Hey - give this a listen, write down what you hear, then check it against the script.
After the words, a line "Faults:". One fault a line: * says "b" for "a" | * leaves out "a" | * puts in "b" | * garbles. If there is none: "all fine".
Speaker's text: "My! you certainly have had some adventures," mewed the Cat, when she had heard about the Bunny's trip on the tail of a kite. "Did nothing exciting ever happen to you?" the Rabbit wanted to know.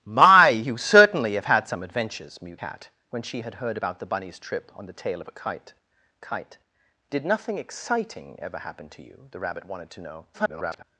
"My! you certainly have had some adventures," mewed Cat, when she had heard about the Bunny's trip on the tail of a kite kite. "Did nothing exciting ever happen to you?" the Rabbit wanted to know. [garbled]
Faults:
* leaves out "the"
* puts in "kite"
* garbles